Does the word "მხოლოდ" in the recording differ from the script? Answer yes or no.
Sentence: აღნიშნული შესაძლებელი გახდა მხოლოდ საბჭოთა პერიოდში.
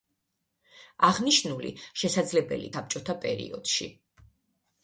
yes